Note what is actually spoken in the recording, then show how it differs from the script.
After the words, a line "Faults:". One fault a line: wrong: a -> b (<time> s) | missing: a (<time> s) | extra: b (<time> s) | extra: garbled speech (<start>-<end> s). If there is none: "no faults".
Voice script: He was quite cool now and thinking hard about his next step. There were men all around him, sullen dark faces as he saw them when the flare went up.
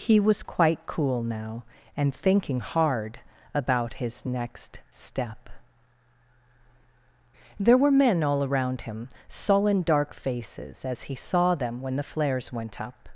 He was quite cool now and thinking hard about his next step. There were men all around him, sullen dark faces as he saw them when the flares went up.
Faults:
wrong: flare -> flares (12.1 s)